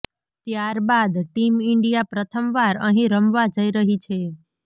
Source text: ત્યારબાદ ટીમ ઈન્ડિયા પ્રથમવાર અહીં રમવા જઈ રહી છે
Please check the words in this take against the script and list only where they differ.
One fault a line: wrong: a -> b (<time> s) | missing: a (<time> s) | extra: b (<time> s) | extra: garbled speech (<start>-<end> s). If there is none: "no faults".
no faults